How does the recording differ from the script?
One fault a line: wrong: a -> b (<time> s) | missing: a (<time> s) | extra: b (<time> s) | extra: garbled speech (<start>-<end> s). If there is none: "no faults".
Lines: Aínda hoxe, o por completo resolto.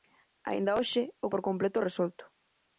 no faults